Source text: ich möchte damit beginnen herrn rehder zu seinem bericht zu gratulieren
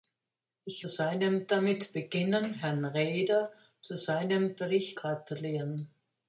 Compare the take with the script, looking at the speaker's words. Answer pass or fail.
fail